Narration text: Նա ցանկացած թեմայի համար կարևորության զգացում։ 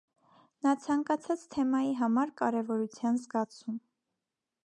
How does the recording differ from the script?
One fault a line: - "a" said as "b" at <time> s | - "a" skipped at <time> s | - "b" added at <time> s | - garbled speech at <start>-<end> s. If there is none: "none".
none